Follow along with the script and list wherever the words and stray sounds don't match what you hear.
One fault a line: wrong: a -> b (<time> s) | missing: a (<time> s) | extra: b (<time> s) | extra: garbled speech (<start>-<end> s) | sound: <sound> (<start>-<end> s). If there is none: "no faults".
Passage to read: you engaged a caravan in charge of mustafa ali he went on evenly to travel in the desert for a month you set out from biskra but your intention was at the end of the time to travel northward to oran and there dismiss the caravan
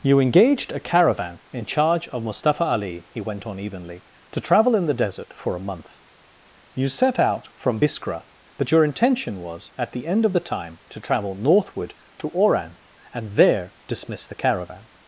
no faults